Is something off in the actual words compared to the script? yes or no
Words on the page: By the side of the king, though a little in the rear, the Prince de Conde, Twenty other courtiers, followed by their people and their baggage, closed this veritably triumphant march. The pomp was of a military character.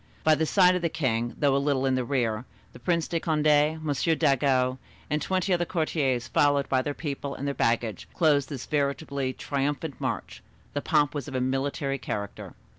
yes